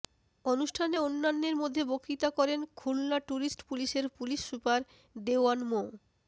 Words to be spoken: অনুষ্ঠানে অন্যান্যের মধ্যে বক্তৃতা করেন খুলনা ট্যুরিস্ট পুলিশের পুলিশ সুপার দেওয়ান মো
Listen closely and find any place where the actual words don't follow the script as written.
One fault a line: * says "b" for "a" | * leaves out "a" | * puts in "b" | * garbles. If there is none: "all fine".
all fine